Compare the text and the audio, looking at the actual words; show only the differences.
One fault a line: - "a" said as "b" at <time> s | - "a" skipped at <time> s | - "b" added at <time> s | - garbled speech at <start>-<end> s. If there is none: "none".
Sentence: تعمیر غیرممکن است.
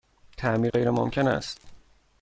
none